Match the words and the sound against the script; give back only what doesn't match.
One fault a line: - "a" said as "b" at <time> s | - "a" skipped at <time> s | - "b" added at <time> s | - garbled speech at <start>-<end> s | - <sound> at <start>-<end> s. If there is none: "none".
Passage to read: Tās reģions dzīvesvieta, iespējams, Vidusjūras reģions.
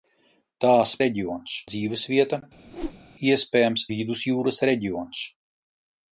- whoosh at 2.7-3.0 s